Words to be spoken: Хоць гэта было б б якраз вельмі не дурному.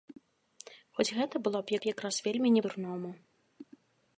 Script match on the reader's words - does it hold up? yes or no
yes